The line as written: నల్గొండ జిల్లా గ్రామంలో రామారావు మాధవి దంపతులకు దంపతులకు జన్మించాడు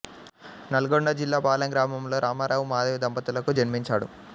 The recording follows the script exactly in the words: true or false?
false